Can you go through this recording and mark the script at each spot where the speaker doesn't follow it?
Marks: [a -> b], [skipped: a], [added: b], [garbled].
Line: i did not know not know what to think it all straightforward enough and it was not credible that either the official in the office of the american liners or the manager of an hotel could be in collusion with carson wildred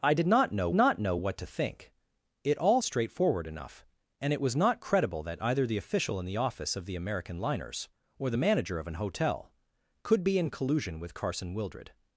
i did not know not know what to think it all straightforward enough and it was not credible that either the official in the office of the american liners or the manager of an hotel could be in collusion with carson wildred